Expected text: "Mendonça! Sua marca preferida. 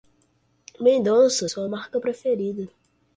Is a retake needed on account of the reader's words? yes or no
no